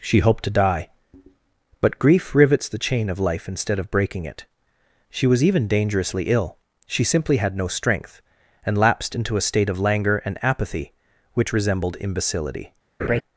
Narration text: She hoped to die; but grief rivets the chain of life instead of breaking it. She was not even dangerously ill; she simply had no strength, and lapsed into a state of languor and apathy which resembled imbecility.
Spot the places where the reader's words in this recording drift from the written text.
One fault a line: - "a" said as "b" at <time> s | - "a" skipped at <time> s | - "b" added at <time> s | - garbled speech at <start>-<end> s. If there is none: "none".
- "not" skipped at 5.4 s